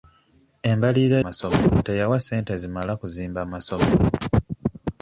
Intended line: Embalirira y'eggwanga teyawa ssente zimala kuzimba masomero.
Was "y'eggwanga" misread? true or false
true